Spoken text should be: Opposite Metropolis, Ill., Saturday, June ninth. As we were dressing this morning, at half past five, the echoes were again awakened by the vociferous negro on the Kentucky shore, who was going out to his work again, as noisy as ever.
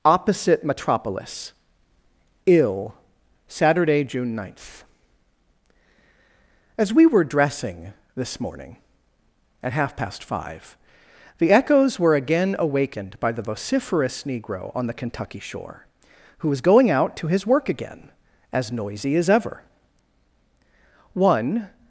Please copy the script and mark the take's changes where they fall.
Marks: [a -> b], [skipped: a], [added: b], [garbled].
Opposite Metropolis, Ill., Saturday, June ninth. As we were dressing this morning, at half past five, the echoes were again awakened by the vociferous negro on the Kentucky shore, who was going out to his work again, as noisy as ever. [added: One]